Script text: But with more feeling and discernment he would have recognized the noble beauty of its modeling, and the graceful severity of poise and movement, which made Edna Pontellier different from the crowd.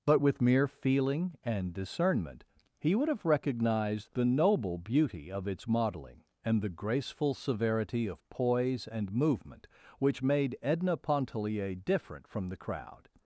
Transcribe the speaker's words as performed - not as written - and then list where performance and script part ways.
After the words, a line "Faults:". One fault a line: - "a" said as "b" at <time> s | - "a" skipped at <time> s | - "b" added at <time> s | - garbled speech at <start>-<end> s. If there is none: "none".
But with mere feeling and discernment he would have recognized the noble beauty of its modeling, and the graceful severity of poise and movement, which made Edna Pontellier different from the crowd.
Faults:
- "more" said as "mere" at 0.4 s